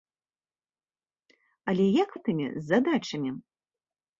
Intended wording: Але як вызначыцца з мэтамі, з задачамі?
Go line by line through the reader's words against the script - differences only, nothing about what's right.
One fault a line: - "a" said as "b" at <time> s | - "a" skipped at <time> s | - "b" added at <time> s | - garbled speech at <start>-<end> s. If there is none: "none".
- "вызначыцца з" skipped at 2.1 s